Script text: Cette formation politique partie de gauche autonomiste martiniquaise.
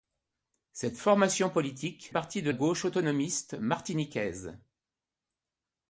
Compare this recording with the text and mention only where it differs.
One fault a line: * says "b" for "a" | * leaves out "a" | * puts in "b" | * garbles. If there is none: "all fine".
all fine